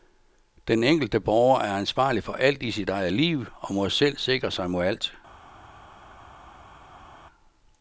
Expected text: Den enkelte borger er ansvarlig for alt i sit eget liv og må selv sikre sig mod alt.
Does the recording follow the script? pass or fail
pass